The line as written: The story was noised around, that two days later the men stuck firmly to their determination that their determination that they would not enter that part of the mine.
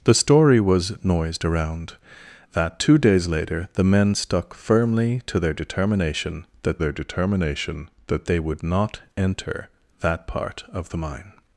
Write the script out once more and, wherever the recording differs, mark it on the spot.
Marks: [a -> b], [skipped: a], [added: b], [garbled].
The story was noised around, that two days later the men stuck firmly to their determination that their determination that they would not enter that part of the mine.